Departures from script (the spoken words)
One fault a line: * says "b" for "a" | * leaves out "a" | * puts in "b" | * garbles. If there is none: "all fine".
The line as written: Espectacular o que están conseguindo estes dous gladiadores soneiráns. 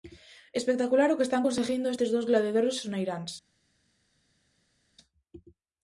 all fine